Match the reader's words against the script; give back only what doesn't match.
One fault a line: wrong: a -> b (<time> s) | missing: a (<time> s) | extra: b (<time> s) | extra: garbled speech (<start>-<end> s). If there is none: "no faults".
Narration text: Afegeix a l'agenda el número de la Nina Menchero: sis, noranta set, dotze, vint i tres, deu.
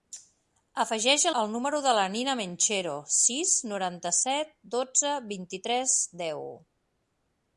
missing: l'agenda (1.3 s)